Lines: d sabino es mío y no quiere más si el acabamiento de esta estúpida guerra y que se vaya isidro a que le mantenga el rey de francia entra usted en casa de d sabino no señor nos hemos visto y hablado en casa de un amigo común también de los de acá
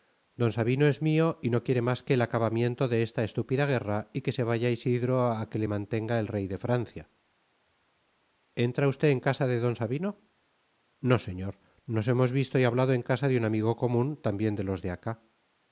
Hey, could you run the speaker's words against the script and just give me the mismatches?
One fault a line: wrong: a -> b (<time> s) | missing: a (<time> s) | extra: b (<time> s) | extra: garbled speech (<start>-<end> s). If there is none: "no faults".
wrong: si -> que (2.0 s)